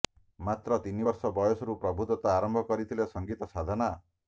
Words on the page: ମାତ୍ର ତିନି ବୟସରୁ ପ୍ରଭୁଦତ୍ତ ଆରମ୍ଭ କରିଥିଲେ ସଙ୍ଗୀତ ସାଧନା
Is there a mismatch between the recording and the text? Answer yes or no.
yes